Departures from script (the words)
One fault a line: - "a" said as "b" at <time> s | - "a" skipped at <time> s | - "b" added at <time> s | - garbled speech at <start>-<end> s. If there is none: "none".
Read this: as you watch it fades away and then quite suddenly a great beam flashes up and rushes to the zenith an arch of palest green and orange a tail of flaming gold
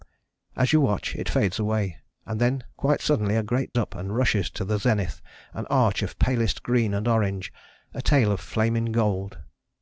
- "beam flashes" skipped at 3.7 s